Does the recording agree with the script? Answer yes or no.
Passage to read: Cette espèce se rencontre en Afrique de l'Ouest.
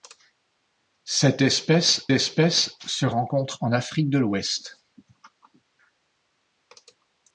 no